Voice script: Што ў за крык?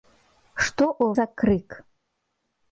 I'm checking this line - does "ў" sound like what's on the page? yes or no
yes